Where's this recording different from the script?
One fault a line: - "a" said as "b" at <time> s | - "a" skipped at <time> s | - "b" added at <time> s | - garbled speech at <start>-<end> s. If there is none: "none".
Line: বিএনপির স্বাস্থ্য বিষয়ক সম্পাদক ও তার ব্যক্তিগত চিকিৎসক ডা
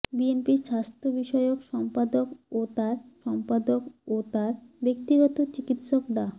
- "সম্পাদক ও তার" added at 3.2 s